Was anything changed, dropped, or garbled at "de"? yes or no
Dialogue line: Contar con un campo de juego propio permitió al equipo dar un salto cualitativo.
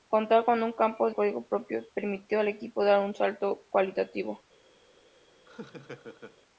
yes